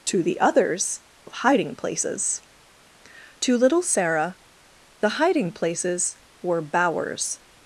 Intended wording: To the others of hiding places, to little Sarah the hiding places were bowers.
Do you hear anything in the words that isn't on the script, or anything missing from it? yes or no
no